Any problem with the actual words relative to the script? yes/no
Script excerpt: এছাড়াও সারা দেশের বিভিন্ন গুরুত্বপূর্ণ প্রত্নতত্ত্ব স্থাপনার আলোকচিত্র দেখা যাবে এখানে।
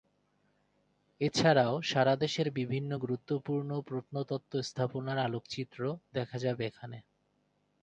no